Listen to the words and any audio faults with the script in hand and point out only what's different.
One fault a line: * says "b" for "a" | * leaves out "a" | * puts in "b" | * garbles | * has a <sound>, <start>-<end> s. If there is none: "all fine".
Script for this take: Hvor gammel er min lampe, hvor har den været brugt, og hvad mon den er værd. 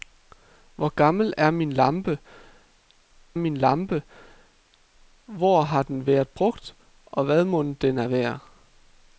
* puts in "min lampe"